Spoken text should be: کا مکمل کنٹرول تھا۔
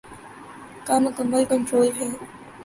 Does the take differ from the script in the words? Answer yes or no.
yes